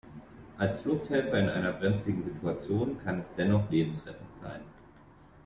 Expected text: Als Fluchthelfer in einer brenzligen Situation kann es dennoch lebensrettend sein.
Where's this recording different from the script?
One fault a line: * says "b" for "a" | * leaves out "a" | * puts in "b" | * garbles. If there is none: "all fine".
all fine